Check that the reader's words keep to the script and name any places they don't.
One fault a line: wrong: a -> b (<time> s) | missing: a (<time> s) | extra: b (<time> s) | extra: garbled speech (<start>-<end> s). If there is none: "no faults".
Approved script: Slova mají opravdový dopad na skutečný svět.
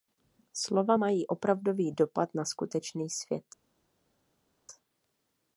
no faults